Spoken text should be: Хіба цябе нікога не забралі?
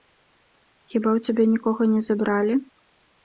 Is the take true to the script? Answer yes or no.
no